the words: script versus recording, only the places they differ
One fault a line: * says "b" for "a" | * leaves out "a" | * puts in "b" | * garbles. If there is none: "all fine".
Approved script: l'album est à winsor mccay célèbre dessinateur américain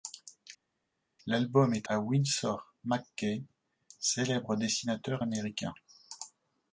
all fine